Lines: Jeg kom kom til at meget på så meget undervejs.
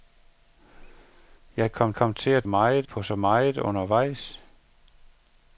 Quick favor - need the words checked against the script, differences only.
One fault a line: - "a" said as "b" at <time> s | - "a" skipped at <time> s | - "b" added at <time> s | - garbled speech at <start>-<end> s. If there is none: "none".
none